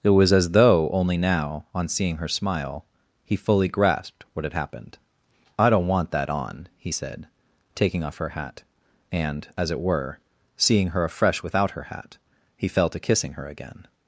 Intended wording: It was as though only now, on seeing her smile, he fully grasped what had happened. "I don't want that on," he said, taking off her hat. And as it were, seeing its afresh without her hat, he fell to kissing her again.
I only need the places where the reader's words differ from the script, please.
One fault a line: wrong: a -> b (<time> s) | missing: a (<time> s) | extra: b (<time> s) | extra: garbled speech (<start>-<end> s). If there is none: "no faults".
wrong: its -> her (10.9 s)